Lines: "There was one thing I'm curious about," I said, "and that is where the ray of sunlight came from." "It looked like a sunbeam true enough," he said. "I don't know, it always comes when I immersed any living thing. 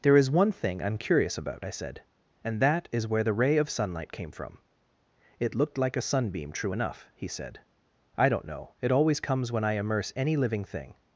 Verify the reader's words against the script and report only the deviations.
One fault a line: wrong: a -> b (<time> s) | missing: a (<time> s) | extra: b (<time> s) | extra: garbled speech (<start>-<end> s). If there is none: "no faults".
wrong: was -> is (0.2 s)
wrong: immersed -> immerse (9.7 s)